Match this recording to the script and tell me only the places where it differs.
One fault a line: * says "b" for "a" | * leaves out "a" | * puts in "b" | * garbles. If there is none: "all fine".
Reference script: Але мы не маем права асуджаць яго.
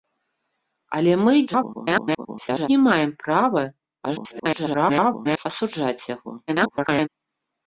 * garbles
* garbles
* garbles